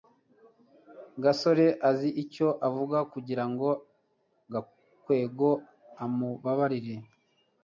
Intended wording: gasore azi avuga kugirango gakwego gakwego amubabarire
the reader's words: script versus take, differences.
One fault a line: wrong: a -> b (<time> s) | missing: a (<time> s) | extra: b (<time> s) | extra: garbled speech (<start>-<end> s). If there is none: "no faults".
extra: icyo (2.2 s)
missing: gakwego (5.5 s)